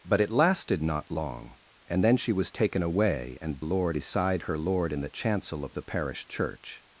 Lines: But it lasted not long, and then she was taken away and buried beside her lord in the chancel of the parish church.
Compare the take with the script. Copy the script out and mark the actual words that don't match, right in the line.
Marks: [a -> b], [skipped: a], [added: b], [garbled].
But it lasted not long, and then she was taken away and [buried -> lord] beside her lord in the chancel of the parish church.